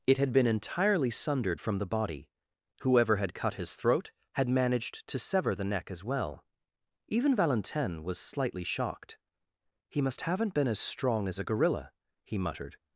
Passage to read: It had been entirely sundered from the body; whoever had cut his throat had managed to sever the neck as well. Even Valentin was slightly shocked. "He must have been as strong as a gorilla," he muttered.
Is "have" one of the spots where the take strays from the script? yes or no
yes